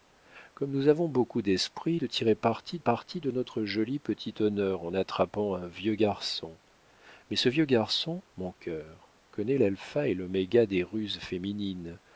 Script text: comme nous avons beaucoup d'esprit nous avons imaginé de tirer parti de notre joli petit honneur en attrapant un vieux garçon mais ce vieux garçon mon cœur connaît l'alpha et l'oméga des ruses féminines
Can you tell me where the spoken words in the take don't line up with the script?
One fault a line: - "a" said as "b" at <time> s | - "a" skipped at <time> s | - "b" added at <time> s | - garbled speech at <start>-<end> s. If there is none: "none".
- "nous avons imaginé" skipped at 2.0 s
- "parti" added at 2.8 s